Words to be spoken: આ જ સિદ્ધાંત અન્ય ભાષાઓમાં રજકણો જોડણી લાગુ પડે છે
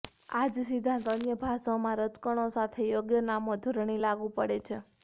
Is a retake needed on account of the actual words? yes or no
yes